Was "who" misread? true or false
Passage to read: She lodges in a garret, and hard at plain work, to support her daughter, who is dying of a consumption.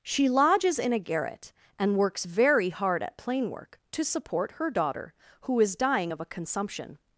false